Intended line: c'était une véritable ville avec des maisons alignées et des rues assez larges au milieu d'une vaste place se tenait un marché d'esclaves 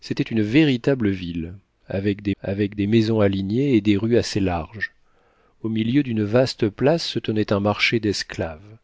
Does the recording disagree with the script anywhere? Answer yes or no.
yes